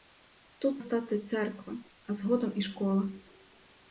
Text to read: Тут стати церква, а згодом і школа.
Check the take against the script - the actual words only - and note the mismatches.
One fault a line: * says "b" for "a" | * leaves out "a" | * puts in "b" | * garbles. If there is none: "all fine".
all fine